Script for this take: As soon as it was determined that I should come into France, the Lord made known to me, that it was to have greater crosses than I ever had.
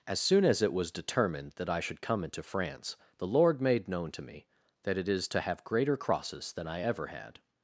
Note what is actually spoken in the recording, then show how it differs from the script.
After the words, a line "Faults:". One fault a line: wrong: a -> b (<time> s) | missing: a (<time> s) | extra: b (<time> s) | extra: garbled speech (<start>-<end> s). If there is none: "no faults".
As soon as it was determined that I should come into France, the Lord made known to me, that it is to have greater crosses than I ever had.
Faults:
wrong: was -> is (5.1 s)